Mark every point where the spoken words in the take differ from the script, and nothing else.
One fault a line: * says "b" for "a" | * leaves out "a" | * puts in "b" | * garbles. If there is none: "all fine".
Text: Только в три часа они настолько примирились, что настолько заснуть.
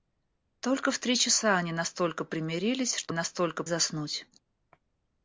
all fine